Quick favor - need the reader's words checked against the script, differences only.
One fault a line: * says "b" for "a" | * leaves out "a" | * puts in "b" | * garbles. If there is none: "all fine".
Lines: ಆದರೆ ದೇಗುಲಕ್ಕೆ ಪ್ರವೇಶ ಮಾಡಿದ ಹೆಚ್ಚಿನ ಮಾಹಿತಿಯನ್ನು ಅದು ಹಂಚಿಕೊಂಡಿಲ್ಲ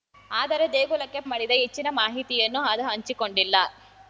* leaves out "ಪ್ರವೇಶ"